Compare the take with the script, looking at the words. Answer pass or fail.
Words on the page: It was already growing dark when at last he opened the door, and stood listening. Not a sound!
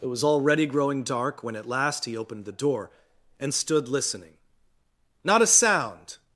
pass